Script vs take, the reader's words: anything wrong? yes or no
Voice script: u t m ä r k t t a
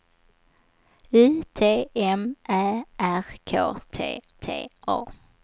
no